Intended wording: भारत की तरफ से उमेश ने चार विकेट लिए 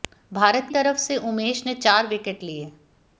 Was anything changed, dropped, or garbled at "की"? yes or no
yes